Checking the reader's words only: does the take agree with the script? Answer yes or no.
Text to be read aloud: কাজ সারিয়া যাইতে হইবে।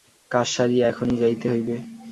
no